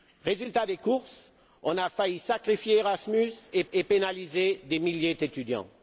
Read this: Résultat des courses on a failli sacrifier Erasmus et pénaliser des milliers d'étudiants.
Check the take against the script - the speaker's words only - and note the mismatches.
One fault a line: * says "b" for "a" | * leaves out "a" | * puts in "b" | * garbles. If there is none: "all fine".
* puts in "et"